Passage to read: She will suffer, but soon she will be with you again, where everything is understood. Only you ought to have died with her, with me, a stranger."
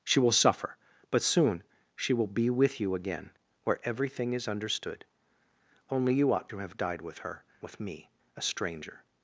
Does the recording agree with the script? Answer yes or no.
yes